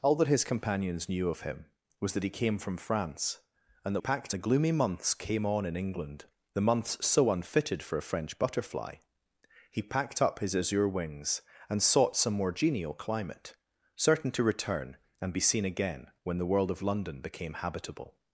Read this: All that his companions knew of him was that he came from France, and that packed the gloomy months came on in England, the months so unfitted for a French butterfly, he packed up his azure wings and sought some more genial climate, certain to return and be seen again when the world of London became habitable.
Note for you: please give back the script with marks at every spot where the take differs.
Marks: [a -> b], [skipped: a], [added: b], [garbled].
All that his companions knew of him was that he came from France, and that packed the gloomy months came on in England, the months so unfitted for a French butterfly, he packed up his azure wings and sought some more genial climate, certain to return and be seen again when the world of London became habitable.